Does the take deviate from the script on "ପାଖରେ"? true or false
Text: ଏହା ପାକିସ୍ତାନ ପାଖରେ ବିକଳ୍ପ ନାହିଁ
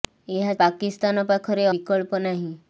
false